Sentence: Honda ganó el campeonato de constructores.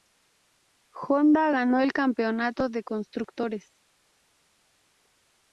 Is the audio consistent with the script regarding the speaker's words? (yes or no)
yes